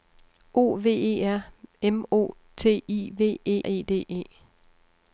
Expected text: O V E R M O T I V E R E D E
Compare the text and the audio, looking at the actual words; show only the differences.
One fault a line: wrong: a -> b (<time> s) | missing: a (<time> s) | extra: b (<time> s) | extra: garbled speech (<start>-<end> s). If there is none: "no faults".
missing: R (3.6 s)